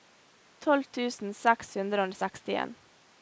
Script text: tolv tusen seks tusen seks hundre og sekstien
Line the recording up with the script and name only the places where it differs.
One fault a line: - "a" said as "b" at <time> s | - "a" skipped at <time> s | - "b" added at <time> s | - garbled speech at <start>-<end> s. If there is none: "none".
- "tusen seks" skipped at 1.8 s